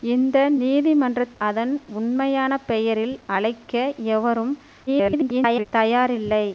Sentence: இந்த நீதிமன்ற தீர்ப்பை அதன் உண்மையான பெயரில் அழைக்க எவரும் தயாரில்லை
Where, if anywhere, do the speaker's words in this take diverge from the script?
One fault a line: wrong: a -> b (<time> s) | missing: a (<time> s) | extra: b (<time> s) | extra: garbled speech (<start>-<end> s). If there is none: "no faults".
missing: தீர்ப்பை (1.2 s)
extra: garbled speech (4.9-5.7 s)